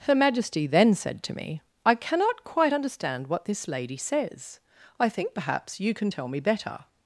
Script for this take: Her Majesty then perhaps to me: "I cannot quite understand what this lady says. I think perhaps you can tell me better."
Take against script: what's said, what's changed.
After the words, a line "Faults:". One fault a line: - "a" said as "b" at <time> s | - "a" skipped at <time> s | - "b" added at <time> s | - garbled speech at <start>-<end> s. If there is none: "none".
Her Majesty then said to me: "I cannot quite understand what this lady says. I think perhaps you can tell me better."
Faults:
- "perhaps" said as "said" at 0.9 s